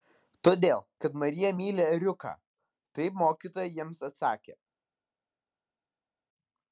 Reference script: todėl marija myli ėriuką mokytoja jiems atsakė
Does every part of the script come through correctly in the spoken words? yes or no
no